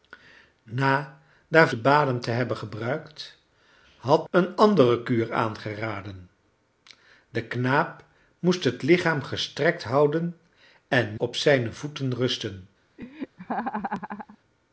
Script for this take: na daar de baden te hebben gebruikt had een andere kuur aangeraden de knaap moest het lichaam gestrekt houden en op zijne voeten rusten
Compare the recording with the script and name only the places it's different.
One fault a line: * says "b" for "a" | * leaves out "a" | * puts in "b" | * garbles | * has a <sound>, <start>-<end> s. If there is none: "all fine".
* has a laugh, 13.0-14.4 s